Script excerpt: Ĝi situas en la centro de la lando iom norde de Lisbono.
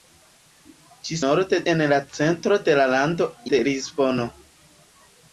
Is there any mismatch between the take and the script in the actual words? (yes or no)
yes